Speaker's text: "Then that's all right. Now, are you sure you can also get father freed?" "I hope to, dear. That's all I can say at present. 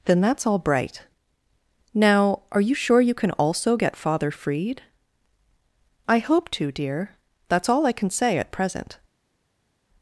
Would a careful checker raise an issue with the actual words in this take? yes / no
yes